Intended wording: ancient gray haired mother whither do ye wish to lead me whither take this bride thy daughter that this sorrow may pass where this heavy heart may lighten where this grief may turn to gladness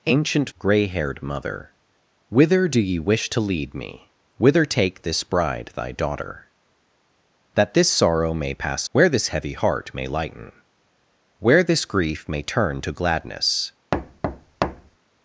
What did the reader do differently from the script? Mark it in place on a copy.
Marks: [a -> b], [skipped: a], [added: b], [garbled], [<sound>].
ancient gray haired mother whither do ye wish to lead me whither take this bride thy daughter that this sorrow may pass where this heavy heart may lighten where this grief may turn to gladness [thud]